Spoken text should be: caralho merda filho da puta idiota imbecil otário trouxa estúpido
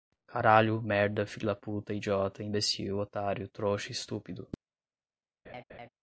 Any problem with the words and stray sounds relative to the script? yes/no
yes